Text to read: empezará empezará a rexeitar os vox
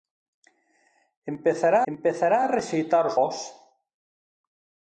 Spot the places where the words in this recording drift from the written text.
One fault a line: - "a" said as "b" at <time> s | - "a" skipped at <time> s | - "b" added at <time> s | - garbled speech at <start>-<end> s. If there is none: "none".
none